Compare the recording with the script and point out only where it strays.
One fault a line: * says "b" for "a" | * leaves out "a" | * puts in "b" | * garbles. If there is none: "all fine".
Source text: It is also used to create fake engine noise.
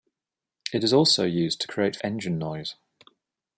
* leaves out "fake"